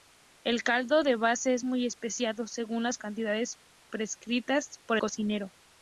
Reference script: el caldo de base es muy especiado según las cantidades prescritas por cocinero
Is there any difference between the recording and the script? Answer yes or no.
no